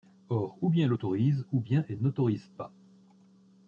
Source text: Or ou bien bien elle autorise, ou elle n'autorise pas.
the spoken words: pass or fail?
fail